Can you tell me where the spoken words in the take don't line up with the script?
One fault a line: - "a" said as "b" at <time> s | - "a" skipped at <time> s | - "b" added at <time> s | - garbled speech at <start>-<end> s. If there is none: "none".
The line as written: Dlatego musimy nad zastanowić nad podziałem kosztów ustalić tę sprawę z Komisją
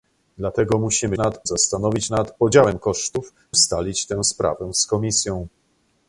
none